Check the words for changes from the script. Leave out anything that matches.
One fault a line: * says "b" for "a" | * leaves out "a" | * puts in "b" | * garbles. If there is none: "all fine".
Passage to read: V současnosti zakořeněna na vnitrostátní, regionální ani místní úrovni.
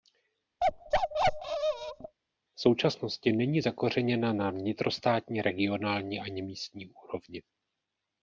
* puts in "není"